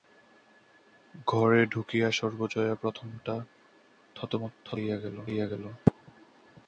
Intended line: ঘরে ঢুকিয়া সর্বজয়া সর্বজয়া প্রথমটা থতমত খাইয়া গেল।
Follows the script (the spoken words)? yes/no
no